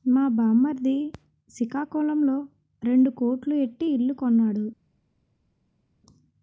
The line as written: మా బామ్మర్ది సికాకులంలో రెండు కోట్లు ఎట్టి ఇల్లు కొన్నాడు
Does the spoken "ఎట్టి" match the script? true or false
true